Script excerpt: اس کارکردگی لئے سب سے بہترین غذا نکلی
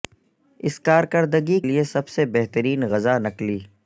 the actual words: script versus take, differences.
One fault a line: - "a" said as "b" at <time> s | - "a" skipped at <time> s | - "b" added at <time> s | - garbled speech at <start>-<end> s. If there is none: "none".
none